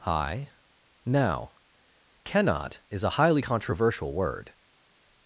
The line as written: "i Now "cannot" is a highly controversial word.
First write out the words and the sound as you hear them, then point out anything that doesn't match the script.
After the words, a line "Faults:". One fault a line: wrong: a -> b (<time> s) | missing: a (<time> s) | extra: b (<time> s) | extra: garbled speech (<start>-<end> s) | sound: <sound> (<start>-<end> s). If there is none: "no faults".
"i Now "cannot" is a highly controversial word.
Faults:
no faults